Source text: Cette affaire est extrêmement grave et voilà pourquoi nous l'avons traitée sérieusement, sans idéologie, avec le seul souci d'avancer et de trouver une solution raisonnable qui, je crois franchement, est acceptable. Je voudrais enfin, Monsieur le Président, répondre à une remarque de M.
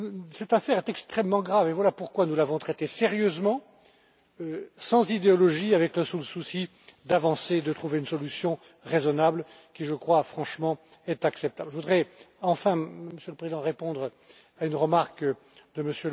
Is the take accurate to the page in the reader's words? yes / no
yes